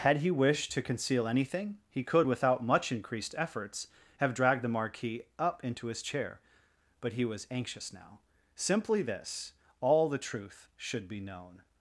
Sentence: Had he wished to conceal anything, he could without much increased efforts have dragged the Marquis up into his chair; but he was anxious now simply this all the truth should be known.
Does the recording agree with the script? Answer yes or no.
yes